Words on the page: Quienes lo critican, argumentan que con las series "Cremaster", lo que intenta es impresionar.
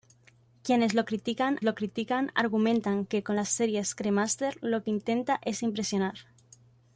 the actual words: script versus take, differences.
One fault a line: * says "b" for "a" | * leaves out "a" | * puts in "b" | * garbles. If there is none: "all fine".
* puts in "lo critican"